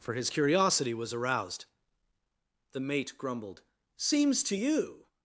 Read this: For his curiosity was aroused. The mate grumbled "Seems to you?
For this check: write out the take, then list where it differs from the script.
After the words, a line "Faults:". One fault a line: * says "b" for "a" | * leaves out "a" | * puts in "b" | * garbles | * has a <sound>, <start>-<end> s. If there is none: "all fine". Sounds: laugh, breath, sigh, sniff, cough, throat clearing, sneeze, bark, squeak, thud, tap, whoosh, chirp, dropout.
For his curiosity was aroused. The mate grumbled "Seems to you?
Faults:
all fine